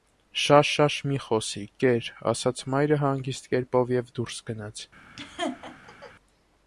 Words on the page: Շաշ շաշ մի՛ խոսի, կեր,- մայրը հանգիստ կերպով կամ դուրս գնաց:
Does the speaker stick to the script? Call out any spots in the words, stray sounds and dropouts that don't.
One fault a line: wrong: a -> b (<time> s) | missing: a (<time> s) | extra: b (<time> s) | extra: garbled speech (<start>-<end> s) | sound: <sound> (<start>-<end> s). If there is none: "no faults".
extra: ասաց (2.3 s)
wrong: կամ -> և (4.0 s)
sound: laugh (5.2-6.1 s)